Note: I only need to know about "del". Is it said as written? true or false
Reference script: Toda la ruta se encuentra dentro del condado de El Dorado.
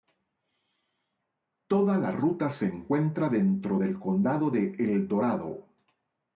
true